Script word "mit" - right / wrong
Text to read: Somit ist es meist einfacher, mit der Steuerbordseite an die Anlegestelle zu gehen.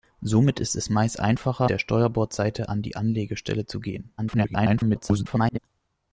wrong